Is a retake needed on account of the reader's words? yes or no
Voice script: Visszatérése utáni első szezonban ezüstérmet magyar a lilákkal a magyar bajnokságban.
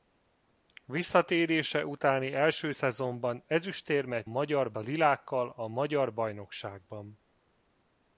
no